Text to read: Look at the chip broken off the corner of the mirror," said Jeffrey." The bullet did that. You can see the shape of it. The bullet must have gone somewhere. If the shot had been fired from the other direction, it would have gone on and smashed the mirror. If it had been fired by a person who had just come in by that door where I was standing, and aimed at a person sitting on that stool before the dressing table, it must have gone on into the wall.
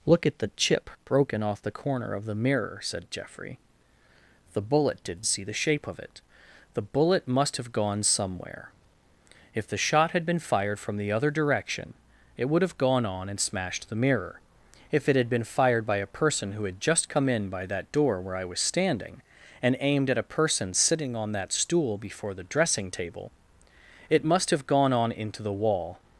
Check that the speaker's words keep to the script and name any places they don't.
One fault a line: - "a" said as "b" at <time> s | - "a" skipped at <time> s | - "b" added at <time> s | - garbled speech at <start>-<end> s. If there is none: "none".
- "that You can" skipped at 5.2 s